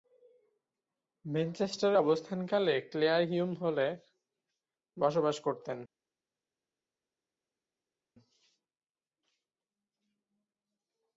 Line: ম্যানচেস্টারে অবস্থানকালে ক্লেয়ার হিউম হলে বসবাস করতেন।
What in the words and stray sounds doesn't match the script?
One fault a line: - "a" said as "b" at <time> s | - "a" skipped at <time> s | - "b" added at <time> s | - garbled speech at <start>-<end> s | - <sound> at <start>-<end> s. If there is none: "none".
none